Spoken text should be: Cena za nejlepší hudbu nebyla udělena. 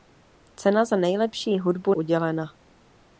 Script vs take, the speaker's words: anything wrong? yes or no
yes